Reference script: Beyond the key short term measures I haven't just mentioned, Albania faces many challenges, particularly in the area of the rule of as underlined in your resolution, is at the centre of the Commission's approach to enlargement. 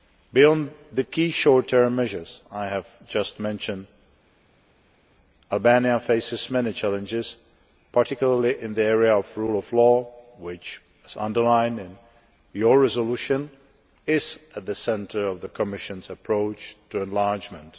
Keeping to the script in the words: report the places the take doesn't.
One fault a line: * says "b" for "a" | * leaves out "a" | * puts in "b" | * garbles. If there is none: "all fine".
* says "have" for "haven't"
* puts in "law which"